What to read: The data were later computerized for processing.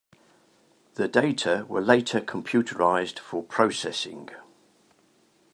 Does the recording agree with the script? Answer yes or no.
yes